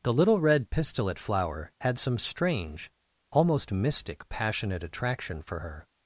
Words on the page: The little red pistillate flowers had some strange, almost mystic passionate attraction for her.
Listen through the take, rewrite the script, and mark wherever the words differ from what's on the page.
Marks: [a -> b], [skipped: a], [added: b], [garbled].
The little red pistillate [flowers -> flower] had some strange, almost mystic passionate attraction for her.